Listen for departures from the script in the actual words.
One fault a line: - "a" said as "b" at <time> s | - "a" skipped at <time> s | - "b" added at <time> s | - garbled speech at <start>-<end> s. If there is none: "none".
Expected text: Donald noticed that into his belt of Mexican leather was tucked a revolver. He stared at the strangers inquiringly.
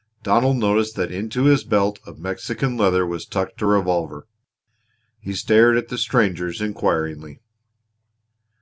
none